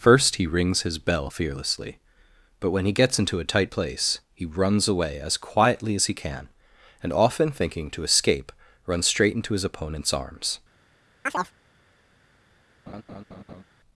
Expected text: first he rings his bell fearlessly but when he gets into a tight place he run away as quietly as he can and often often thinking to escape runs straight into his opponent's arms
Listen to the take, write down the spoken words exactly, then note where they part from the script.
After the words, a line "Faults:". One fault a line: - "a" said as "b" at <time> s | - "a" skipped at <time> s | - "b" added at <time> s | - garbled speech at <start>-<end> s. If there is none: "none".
first he rings his bell fearlessly but when he gets into a tight place he runs away as quietly as he can and often thinking to escape runs straight into his opponent's arms
Faults:
- "run" said as "runs" at 4.4 s
- "often" skipped at 7.5 s